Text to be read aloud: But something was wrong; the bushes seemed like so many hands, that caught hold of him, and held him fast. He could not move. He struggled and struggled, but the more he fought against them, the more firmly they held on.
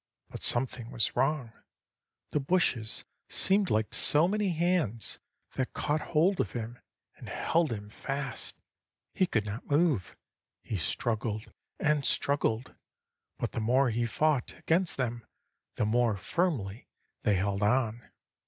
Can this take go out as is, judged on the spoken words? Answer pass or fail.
pass